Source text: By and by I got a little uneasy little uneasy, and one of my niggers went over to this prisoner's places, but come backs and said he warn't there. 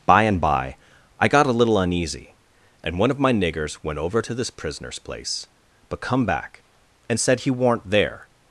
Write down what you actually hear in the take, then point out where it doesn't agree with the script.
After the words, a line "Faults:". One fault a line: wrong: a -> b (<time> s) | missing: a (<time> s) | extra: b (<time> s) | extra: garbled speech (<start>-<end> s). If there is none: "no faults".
By and by I got a little uneasy, and one of my niggers went over to this prisoner's place, but come back and said he warn't there.
Faults:
missing: little uneasy (2.4 s)
wrong: places -> place (5.0 s)
wrong: backs -> back (6.2 s)